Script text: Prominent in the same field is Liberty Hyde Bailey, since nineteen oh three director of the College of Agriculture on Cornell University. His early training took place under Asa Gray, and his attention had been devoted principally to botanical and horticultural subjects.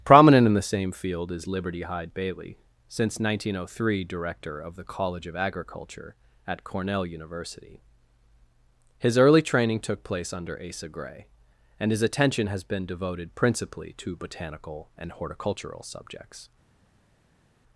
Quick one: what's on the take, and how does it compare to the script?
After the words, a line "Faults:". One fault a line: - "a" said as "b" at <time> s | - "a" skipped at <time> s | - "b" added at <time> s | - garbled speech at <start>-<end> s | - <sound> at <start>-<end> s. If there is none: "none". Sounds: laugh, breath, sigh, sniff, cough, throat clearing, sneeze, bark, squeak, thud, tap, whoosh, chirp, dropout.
Prominent in the same field is Liberty Hyde Bailey, since nineteen oh three director of the College of Agriculture at Cornell University. His early training took place under Asa Gray, and his attention has been devoted principally to botanical and horticultural subjects.
Faults:
- "on" said as "at" at 6.5 s
- "had" said as "has" at 12.5 s